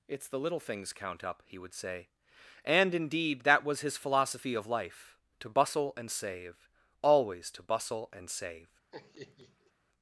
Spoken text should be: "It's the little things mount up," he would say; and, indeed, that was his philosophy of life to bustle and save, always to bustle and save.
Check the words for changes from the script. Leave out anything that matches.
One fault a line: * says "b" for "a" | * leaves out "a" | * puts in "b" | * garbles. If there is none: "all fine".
* says "count" for "mount"